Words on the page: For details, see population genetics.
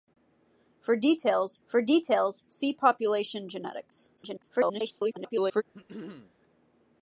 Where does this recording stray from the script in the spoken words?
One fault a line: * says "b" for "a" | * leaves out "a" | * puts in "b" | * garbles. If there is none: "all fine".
* puts in "for details"
* garbles